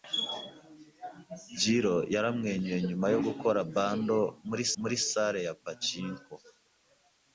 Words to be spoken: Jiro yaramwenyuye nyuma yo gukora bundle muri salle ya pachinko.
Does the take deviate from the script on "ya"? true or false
false